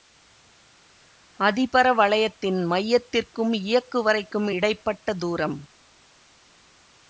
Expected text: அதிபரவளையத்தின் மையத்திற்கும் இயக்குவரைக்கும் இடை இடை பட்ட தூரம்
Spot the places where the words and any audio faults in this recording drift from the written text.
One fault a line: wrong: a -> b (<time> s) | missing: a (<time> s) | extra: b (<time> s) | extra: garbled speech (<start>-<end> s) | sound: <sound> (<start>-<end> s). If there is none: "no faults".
missing: இடை (4.7 s)